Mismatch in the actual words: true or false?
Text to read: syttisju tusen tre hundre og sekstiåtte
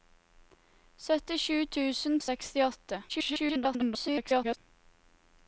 true